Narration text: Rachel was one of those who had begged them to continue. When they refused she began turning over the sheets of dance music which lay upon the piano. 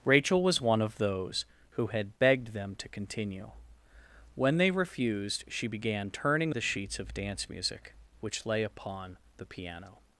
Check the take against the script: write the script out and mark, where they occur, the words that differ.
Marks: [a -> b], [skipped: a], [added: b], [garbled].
Rachel was one of those who had begged them to continue. When they refused she began turning [skipped: over] the sheets of dance music which lay upon the piano.